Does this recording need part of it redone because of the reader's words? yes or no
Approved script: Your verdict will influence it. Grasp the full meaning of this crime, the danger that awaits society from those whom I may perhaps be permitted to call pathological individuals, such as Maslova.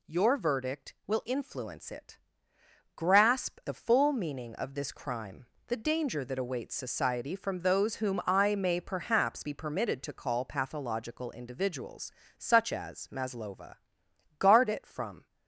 yes